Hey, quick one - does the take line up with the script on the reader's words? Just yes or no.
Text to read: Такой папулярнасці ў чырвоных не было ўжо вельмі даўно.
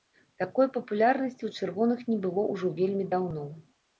yes